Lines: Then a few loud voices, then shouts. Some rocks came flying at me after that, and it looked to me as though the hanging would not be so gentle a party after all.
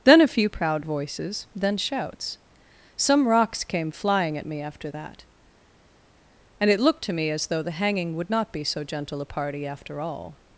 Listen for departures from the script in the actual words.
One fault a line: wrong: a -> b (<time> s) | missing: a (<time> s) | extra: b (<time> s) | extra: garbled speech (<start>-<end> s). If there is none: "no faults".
wrong: loud -> proud (0.5 s)